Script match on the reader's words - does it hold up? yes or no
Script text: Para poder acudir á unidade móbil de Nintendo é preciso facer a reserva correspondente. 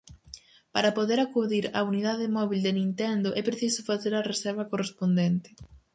yes